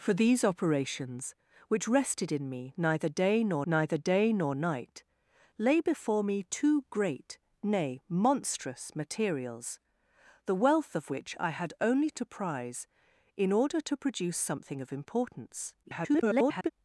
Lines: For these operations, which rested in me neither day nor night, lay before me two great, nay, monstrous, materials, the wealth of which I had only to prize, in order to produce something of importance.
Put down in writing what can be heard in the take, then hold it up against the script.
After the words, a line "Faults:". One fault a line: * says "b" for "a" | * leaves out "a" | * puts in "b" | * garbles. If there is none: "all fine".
For these operations, which rested in me neither day nor neither day nor night, lay before me two great, nay, monstrous, materials, the wealth of which I had only to prize, in order to produce something of importance. [garbled]
Faults:
* puts in "neither day nor"
* garbles